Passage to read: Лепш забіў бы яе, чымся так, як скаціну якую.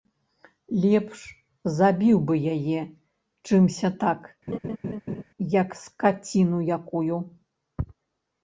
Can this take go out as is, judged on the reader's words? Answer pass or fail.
pass